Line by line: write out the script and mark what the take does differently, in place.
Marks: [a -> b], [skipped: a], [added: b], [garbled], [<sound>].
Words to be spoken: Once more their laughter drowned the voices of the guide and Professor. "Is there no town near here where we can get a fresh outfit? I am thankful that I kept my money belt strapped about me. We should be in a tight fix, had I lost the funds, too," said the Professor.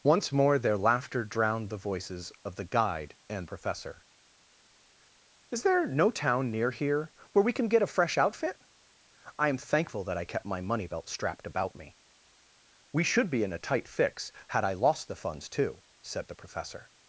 Once more their laughter drowned the voices of the guide and Professor. "Is there no town near here where we can get a fresh outfit? I am thankful that I kept my money belt strapped about me. We should be in a tight fix, had I lost the funds, too," said the Professor.